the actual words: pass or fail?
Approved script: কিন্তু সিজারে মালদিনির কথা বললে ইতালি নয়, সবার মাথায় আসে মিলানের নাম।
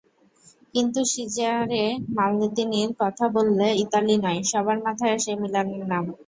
pass